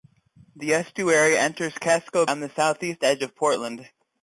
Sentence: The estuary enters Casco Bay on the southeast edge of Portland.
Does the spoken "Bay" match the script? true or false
false